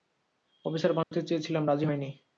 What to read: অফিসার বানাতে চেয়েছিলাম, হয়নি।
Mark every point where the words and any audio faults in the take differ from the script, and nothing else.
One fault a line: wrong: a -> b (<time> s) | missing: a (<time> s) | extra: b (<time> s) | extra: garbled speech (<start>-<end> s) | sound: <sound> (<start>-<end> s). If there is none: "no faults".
sound: dropout (1.0-1.1 s)
extra: রাজি (1.7 s)